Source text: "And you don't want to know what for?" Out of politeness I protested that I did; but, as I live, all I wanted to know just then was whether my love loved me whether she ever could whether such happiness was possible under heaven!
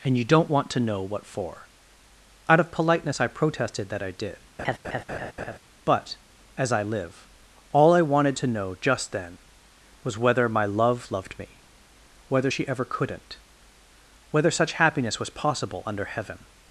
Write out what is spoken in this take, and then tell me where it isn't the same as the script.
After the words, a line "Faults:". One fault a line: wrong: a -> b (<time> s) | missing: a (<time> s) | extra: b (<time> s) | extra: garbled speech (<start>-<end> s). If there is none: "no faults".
"And you don't want to know what for?" Out of politeness I protested that I did; but, as I live, all I wanted to know just then was whether my love loved me whether she ever couldn't whether such happiness was possible under heaven!
Faults:
wrong: could -> couldn't (12.8 s)